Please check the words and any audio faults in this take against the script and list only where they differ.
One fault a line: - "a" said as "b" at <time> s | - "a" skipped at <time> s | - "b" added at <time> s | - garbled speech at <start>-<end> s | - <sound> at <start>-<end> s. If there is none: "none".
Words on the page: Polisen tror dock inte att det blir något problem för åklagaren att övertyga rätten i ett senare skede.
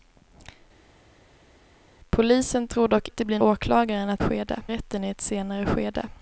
- "inte" skipped at 3.1 s
- "något problem för" skipped at 3.4 s
- "övertyga" said as "skede" at 4.2 s